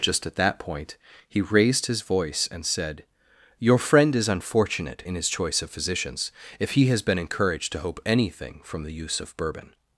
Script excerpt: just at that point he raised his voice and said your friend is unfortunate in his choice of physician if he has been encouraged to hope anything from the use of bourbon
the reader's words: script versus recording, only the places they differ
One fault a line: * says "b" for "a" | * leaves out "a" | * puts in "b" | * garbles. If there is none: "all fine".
* says "physicians" for "physician"